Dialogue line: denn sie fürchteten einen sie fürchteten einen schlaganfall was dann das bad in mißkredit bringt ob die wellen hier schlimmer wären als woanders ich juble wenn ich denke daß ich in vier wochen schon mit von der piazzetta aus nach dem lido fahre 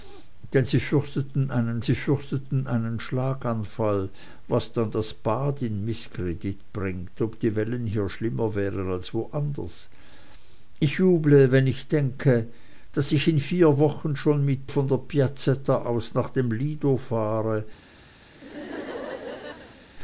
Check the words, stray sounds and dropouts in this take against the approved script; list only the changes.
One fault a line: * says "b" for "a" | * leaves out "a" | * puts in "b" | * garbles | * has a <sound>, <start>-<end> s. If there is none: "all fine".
* has a laugh, 18.3-19.9 s